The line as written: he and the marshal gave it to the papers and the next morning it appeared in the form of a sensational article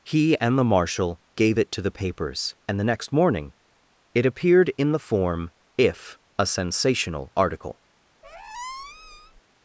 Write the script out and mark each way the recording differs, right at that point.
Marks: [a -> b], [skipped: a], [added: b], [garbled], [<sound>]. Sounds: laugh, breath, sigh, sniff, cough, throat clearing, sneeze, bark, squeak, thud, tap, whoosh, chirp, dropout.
he and the marshal gave it to the papers and the next morning it appeared in the form [of -> if] a sensational article [squeak]